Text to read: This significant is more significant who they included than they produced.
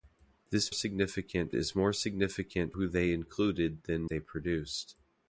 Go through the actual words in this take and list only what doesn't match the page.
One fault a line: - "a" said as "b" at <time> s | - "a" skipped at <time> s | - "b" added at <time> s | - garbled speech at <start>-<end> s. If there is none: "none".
none